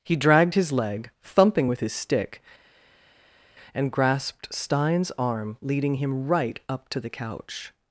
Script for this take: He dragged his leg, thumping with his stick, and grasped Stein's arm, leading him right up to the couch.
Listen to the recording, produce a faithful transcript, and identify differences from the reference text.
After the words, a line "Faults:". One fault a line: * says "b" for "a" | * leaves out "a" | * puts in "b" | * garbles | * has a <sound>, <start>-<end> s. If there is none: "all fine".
He dragged his leg, thumping with his stick, and grasped Stein's arm, leading him right up to the couch.
Faults:
all fine